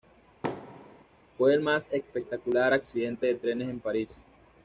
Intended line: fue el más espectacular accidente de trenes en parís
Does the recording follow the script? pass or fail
pass